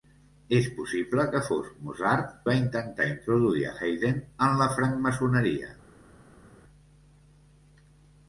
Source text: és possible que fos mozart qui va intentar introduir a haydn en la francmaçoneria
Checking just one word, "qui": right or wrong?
wrong